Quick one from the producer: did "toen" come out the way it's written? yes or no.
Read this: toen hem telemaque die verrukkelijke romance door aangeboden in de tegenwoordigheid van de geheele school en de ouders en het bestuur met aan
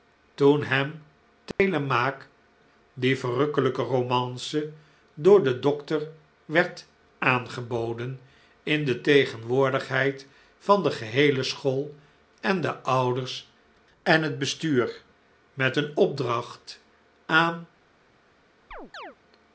yes